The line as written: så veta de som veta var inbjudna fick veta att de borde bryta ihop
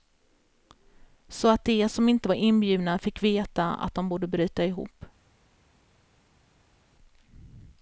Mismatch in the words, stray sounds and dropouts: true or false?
true